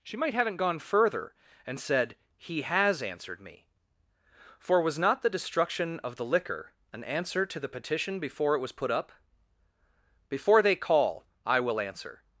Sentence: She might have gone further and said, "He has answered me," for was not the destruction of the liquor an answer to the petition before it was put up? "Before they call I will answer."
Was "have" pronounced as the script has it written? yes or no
no